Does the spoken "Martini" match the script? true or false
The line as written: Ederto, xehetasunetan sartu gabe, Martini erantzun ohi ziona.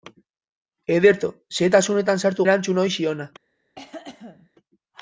false